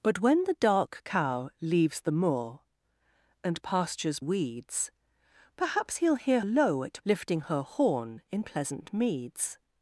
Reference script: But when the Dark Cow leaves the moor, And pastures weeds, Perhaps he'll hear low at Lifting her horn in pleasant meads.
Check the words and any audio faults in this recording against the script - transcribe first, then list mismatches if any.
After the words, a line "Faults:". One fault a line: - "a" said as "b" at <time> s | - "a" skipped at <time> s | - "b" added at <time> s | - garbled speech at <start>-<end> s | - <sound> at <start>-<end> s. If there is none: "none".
But when the Dark Cow leaves the moor, And pastures weeds, Perhaps he'll hear low at Lifting her horn in pleasant meads.
Faults:
none